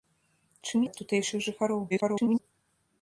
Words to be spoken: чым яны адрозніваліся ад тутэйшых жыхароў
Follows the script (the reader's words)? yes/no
no